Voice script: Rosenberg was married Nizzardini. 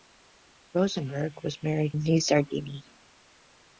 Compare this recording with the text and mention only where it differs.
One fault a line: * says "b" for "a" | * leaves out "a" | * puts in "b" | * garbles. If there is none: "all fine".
all fine